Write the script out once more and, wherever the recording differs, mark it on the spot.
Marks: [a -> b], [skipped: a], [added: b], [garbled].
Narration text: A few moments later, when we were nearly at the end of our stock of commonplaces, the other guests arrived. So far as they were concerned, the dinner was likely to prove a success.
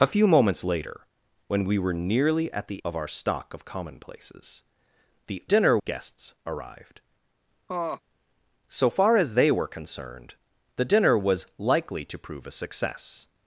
A few moments later, when we were nearly at the [skipped: end] of our stock of commonplaces, the [other -> dinner] guests arrived. So far as they were concerned, the dinner was likely to prove a success.